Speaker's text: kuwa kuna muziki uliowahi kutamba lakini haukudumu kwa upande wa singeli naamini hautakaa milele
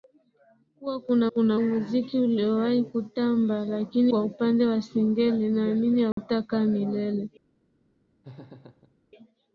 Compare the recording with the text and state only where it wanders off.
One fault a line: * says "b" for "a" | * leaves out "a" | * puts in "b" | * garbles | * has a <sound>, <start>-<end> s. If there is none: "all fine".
* puts in "kuna"
* leaves out "haukudumu"
* has a dropout, 6.1-6.2 s
* has a laugh, 8.2-9.0 s